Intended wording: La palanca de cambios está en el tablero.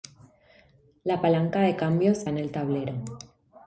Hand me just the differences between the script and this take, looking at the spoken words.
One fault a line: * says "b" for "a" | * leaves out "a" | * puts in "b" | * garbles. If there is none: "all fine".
* leaves out "está"